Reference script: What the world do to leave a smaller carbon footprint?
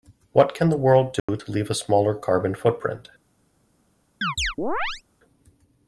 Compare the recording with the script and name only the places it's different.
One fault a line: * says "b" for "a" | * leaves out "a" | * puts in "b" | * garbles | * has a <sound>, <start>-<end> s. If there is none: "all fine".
* puts in "can"
* has a dropout, 1.2-1.3 s
* has a chirp, 4.2-5.0 s